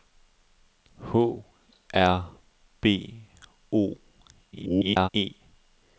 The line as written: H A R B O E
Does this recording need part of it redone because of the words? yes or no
yes